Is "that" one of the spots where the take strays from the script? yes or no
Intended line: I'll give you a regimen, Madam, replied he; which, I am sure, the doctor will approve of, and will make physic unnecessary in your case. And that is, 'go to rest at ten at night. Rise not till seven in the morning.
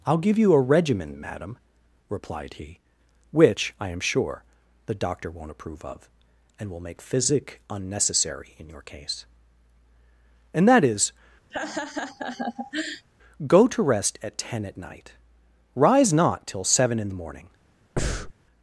no